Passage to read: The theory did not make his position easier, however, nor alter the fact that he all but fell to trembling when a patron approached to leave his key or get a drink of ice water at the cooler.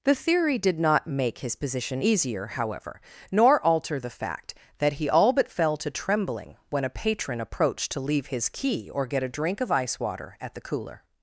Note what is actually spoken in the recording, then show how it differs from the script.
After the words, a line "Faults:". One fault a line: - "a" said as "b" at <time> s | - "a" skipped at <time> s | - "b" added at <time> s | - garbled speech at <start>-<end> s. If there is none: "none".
The theory did not make his position easier, however, nor alter the fact that he all but fell to trembling when a patron approached to leave his key or get a drink of ice water at the cooler.
Faults:
none